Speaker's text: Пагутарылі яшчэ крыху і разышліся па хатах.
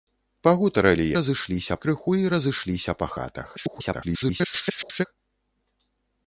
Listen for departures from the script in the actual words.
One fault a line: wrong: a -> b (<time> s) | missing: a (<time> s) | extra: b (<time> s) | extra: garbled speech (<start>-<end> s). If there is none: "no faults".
wrong: яшчэ -> разышліся (1.2 s)
extra: garbled speech (3.6-5.1 s)